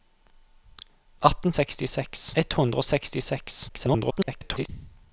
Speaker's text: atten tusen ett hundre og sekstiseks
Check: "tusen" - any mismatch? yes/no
yes